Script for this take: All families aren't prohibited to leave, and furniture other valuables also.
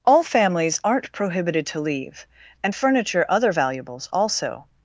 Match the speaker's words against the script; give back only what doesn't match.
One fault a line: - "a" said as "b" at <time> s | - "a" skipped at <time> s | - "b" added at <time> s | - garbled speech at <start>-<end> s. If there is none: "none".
none